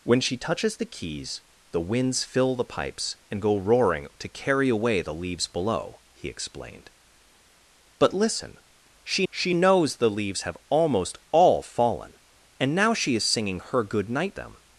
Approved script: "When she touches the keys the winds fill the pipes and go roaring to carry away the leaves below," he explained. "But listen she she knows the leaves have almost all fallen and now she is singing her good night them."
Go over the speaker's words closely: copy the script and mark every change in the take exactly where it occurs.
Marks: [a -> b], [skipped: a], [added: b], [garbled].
"When she touches the keys the winds fill the pipes and go roaring to carry away the leaves below," he explained. "But listen she she knows the leaves have almost all fallen and now she is singing her good night them."